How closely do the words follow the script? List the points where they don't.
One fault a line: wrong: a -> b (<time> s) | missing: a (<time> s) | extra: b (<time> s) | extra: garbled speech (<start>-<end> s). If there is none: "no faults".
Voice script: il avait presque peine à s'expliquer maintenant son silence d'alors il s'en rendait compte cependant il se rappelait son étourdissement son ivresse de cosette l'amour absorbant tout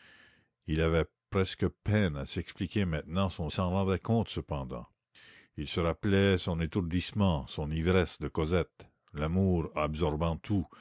missing: silence d'alors il (3.5 s)